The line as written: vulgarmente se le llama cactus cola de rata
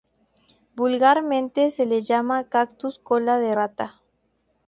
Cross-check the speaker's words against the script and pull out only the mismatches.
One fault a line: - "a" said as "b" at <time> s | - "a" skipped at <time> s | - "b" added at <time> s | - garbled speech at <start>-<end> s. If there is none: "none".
none